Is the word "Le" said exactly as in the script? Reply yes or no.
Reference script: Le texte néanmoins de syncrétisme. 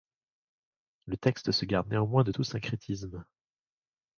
yes